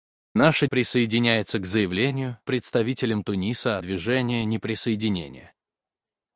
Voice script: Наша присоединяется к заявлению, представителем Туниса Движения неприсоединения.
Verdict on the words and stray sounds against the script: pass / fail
pass